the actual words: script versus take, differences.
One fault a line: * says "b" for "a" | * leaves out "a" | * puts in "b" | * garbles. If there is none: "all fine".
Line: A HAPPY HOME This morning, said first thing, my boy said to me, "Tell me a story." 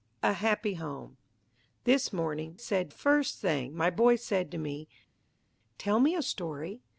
all fine